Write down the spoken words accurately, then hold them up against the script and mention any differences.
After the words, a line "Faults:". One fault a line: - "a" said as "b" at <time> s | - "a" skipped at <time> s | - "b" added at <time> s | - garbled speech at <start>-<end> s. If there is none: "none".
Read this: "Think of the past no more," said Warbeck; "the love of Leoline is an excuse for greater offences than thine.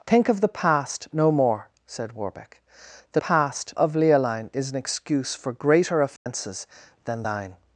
"Think of the past no more," said Warbeck; "the past of Leoline is an excuse for greater offences than thine.
Faults:
- "love" said as "past" at 3.2 s